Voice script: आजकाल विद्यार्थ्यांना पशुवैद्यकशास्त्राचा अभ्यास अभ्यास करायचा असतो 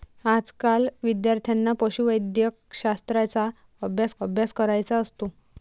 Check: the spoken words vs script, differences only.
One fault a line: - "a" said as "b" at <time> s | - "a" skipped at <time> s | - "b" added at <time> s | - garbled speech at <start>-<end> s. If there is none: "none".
none